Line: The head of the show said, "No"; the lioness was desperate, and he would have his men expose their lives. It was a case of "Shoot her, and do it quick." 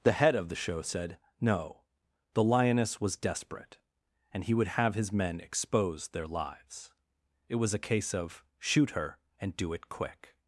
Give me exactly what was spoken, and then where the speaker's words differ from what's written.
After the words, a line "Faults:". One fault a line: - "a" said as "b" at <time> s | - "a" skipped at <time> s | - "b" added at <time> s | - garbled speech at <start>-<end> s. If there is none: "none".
The head of the show said, "No"; the lioness was desperate, and he would have his men expose their lives. It was a case of "Shoot her, and do it quick."
Faults:
none